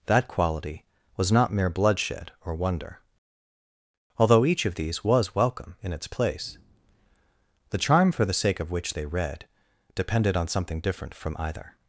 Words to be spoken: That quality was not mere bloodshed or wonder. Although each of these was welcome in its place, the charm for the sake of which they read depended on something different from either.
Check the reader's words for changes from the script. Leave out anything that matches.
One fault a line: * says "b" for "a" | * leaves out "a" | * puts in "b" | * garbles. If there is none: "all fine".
all fine